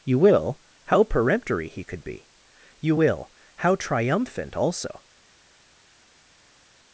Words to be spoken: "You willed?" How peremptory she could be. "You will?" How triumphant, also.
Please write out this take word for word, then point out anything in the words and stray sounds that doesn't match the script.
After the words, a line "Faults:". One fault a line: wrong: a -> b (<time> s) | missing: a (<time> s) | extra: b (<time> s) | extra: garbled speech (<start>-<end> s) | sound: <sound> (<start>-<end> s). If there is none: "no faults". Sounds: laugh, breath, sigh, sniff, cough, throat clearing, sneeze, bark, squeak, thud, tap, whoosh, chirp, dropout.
"You will?" How peremptory he could be. "You will?" How triumphant, also.
Faults:
wrong: willed -> will (0.2 s)
wrong: she -> he (1.7 s)